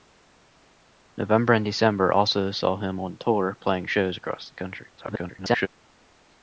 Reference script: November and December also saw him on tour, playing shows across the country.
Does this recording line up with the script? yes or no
no